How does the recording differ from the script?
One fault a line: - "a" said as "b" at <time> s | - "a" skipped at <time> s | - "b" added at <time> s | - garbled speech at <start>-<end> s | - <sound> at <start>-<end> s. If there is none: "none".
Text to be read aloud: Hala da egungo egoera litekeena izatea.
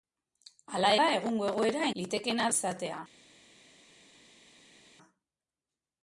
none